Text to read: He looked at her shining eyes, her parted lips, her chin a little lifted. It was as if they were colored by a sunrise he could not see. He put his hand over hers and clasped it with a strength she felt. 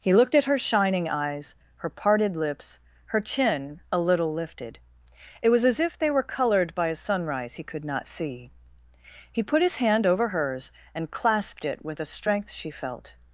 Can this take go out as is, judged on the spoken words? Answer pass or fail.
pass